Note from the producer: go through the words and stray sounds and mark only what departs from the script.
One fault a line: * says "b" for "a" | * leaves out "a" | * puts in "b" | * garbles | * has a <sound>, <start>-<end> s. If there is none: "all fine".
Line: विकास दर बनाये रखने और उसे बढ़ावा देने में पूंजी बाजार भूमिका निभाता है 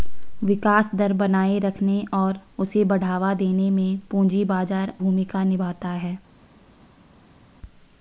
all fine